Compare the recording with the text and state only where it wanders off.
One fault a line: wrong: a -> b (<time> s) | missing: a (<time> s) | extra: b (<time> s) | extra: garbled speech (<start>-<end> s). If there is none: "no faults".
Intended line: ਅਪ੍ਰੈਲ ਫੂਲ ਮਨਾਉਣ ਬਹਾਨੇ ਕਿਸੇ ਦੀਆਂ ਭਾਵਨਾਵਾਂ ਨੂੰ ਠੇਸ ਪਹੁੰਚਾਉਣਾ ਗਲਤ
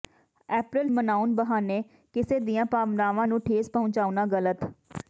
missing: ਫੂਲ (0.9 s)